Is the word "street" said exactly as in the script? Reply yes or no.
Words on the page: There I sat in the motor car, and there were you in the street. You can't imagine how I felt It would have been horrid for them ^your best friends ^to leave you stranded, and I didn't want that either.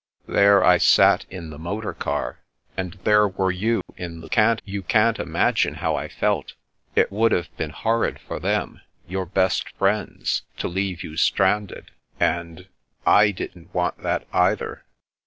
no